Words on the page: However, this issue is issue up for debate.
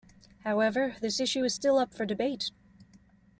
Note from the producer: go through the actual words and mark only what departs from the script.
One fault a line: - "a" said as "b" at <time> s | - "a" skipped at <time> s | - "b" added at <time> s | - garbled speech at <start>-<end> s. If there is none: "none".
- "issue" said as "still" at 1.5 s